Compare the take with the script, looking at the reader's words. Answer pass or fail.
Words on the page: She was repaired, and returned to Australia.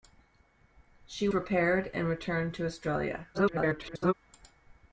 fail